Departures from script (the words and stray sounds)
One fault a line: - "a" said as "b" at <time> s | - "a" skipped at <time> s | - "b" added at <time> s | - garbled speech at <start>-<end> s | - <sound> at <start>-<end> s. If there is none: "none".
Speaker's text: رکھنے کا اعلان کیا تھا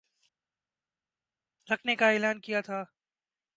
none